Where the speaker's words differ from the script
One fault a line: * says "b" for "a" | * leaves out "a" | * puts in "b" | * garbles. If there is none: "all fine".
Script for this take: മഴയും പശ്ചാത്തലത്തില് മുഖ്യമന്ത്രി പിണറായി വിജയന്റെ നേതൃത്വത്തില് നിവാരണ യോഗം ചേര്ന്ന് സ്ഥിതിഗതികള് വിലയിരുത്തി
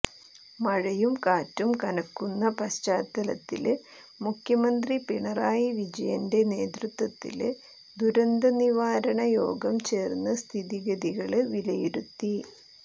* puts in "കാറ്റും കനക്കുന്ന"
* puts in "ദുരന്ത"